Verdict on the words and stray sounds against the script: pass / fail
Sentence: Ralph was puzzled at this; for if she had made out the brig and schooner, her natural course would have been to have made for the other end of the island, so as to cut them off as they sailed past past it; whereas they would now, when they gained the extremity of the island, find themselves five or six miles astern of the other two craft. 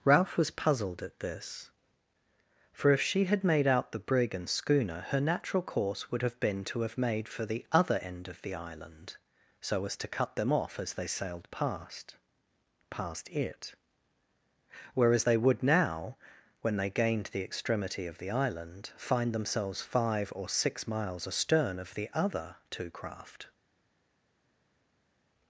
pass